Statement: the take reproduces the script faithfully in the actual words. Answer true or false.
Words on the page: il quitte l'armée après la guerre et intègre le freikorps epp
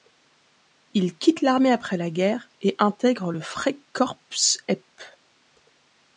true